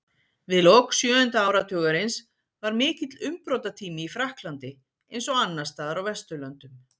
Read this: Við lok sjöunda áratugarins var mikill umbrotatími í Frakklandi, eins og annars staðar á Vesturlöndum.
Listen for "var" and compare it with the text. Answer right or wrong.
right